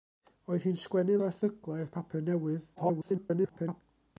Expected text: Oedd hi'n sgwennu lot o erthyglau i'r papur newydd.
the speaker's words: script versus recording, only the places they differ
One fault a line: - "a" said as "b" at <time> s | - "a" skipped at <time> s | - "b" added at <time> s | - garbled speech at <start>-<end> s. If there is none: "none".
- "lot" skipped at 1.2 s
- garbled speech at 2.8-3.8 s